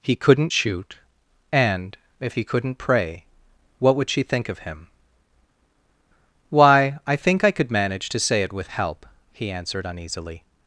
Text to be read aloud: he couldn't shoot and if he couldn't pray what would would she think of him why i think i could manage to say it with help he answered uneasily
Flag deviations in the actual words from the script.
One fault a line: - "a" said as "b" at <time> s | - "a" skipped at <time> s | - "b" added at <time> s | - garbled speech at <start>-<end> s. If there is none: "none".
- "would" skipped at 4.1 s